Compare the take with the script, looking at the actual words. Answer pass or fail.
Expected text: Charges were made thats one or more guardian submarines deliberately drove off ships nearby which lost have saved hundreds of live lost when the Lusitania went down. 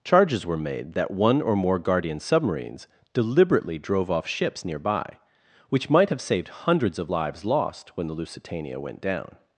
fail